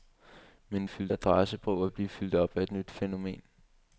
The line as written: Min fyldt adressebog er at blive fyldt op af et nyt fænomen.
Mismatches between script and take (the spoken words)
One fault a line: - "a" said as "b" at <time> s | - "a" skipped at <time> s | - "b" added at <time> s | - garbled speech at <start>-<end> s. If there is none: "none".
none